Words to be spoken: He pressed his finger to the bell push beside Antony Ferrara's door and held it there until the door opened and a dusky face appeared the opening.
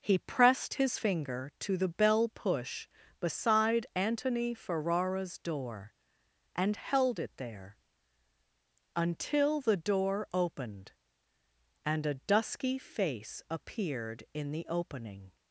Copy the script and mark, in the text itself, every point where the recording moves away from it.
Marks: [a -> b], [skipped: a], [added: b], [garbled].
He pressed his finger to the bell push beside Antony Ferrara's door and held it there until the door opened and a dusky face appeared [added: in] the opening.